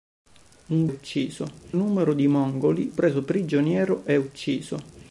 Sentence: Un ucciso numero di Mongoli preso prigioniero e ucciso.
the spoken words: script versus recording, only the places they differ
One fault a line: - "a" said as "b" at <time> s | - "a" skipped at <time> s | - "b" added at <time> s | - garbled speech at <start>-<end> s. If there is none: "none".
none